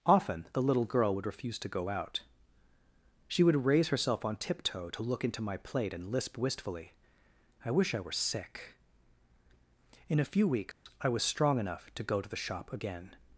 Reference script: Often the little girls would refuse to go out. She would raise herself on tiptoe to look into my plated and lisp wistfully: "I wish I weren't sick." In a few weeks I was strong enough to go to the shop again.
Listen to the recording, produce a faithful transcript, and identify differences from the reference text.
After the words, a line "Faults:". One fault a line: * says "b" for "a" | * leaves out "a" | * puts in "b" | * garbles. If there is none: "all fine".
Often the little girl would refuse to go out. She would raise herself on tiptoe to look into my plate and lisp wistfully: "I wish I were sick." In a few weeks I was strong enough to go to the shop again.
Faults:
* says "girl" for "girls"
* says "plate" for "plated"
* says "were" for "weren't"